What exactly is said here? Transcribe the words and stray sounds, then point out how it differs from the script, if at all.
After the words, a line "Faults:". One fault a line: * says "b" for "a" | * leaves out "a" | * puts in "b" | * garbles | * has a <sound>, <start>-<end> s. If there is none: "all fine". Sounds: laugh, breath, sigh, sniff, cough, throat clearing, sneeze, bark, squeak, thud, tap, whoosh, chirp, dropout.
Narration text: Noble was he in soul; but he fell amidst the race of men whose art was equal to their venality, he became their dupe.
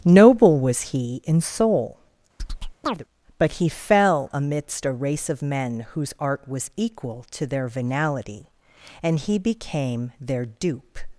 Noble was he in soul; but he fell amidst a race of men whose art was equal to their venality, and he became their dupe.
Faults:
* has a chirp, 2.4-3.0 s
* says "a" for "the"
* puts in "and"